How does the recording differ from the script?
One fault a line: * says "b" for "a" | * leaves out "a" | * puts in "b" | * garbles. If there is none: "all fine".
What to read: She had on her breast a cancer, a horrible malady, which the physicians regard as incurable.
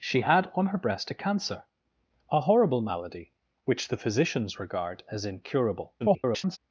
* garbles